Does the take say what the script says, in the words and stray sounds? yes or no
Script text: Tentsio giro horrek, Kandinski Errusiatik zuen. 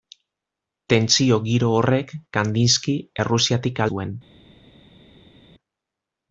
yes